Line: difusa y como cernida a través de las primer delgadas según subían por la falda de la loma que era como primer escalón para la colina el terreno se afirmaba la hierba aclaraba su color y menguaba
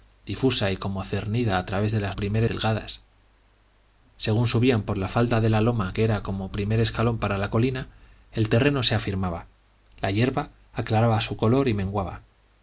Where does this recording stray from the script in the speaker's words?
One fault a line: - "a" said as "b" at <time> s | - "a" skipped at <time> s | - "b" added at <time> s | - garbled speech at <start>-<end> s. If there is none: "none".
none